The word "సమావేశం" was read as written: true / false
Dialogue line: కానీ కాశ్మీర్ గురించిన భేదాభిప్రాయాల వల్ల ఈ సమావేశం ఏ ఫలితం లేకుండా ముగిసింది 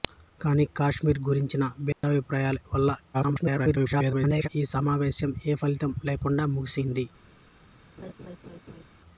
true